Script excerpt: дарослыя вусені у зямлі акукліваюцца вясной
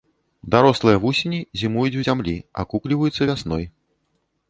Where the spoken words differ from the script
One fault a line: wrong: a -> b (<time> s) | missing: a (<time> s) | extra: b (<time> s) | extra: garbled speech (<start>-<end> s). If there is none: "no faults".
extra: зімуюць (1.6 s)